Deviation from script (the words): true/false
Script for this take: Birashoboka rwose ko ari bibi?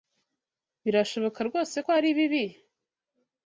false